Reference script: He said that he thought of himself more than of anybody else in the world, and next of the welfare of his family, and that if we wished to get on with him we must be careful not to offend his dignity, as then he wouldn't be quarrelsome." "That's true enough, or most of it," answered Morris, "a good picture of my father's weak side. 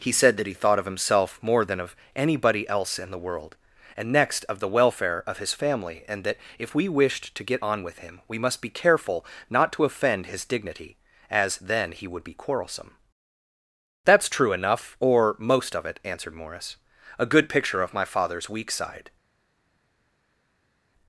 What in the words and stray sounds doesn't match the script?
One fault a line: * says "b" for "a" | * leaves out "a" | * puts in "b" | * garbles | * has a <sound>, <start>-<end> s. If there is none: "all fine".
* says "would" for "wouldn't"